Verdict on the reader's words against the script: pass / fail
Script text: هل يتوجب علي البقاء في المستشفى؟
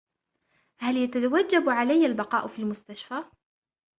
pass